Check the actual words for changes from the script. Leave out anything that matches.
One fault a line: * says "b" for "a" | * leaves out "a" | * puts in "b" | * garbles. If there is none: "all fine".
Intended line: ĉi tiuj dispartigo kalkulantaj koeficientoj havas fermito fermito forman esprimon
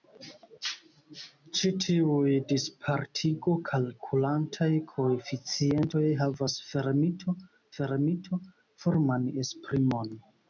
all fine